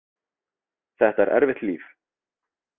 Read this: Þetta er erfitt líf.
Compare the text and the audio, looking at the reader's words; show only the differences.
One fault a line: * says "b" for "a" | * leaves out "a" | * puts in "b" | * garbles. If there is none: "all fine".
all fine